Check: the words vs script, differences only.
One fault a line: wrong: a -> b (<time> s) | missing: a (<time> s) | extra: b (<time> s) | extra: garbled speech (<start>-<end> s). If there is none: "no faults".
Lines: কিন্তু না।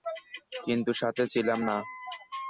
extra: সাথে ছিলাম (0.9 s)